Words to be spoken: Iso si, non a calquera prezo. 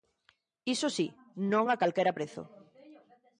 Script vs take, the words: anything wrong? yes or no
no